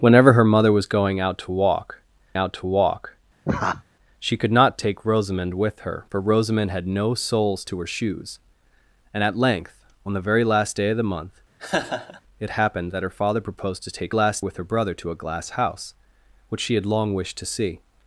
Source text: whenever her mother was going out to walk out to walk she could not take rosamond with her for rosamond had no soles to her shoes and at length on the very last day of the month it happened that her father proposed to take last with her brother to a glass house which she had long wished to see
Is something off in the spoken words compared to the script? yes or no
no